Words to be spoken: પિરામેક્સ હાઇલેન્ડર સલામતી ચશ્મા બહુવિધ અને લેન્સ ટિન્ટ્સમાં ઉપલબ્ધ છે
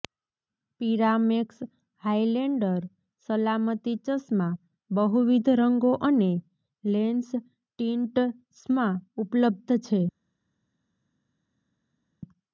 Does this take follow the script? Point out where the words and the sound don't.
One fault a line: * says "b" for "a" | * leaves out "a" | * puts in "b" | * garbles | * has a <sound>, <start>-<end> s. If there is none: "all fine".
* puts in "રંગો"